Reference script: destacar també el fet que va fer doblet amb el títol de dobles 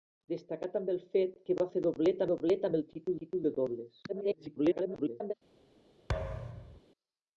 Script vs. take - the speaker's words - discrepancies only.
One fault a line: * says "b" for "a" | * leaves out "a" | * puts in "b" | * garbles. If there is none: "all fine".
* puts in "doblet"
* puts in "títol"
* garbles